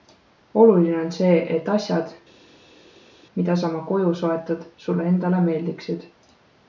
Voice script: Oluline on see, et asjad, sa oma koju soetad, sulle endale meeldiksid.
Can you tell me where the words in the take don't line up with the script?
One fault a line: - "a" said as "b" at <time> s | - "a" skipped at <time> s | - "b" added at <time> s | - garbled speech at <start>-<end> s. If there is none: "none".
- "mida" added at 3.4 s